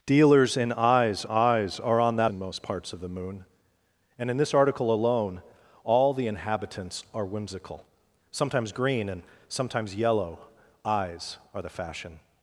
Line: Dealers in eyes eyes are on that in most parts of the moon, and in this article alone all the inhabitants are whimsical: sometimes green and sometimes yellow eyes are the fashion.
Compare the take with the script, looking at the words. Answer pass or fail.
pass